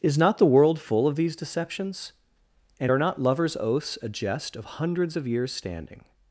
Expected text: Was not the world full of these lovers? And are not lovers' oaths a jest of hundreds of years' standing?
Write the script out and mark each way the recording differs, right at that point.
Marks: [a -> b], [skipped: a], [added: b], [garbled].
[Was -> Is] not the world full of these [lovers? -> deceptions] And are not lovers' oaths a jest of hundreds of years' standing?